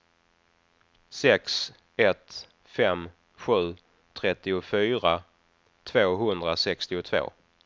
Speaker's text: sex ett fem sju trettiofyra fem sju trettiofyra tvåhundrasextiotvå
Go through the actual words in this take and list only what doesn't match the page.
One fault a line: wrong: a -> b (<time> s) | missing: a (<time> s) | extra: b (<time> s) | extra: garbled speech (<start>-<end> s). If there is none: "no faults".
missing: fem sju trettiofyra (5.2 s)